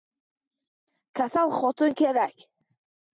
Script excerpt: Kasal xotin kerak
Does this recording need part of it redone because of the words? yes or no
no